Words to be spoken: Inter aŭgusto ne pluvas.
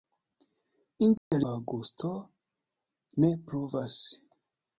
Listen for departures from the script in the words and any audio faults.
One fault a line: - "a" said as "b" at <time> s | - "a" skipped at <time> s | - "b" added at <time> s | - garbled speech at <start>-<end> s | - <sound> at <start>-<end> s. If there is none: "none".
- dropout at 1.2-1.3 s